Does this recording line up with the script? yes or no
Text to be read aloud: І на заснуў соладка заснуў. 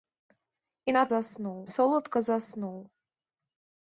yes